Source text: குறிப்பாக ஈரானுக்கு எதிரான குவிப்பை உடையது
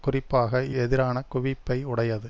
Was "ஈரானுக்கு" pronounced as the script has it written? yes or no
no